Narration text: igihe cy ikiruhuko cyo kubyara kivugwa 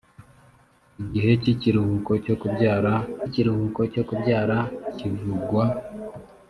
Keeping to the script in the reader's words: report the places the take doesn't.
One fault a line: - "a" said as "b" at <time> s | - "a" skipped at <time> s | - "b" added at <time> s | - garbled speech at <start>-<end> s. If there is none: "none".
- "ikiruhuko cyo kubyara" added at 3.3 s